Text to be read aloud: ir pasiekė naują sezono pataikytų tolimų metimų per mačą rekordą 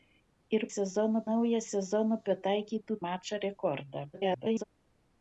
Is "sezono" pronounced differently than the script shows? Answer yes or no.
no